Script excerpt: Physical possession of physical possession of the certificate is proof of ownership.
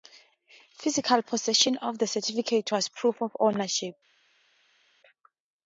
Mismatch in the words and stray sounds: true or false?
true